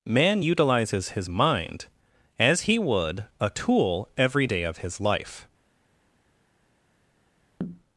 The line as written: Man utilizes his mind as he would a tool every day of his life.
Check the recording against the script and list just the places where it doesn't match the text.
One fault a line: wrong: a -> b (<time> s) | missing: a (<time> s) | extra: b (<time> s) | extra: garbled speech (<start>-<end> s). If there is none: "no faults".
no faults